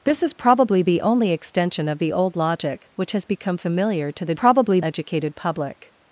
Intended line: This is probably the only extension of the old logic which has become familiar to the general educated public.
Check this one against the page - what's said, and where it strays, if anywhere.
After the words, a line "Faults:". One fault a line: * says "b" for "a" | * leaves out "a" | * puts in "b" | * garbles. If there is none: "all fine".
This is probably the only extension of the old logic which has become familiar to the probably educated public.
Faults:
* says "probably" for "general"